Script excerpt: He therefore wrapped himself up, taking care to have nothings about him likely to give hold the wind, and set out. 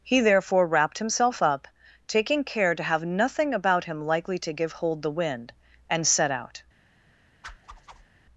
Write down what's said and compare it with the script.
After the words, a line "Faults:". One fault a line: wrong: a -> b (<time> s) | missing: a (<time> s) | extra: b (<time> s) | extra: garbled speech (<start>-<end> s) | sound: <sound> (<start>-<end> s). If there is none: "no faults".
He therefore wrapped himself up, taking care to have nothing about him likely to give hold the wind, and set out.
Faults:
wrong: nothings -> nothing (3.0 s)
sound: whoosh (7.4-8.1 s)